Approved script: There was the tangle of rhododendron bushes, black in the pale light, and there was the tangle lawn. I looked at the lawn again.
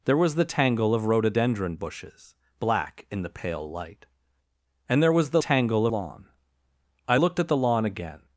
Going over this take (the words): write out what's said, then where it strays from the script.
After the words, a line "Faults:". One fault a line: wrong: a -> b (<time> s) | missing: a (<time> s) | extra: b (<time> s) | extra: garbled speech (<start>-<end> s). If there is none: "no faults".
There was the tangle of rhododendron bushes, black in the pale light, and there was the tangle lawn. I looked at the lawn again.
Faults:
no faults